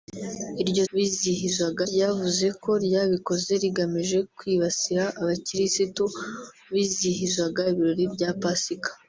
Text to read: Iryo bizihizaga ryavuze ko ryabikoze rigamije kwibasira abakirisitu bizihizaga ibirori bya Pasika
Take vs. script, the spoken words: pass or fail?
pass